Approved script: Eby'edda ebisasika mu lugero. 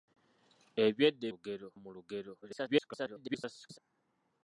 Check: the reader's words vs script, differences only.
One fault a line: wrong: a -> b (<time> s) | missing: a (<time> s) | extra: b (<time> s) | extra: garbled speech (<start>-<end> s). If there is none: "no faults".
wrong: ebisasika -> lugero (1.3 s)
extra: garbled speech (2.4-3.8 s)